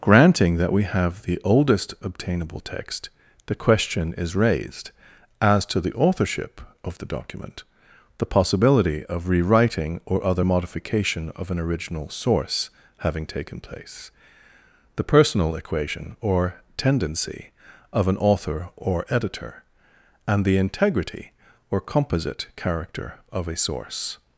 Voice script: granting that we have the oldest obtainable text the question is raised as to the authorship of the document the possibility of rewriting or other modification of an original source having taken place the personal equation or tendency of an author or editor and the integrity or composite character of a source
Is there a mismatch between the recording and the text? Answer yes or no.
no